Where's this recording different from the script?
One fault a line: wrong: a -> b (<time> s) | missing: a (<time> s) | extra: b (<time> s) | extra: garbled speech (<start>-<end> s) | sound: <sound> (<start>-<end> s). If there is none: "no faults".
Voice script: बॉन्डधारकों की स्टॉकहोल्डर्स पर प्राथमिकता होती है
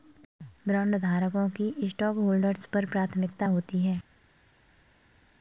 no faults